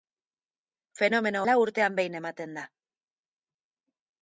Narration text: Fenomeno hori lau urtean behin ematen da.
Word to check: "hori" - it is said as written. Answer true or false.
false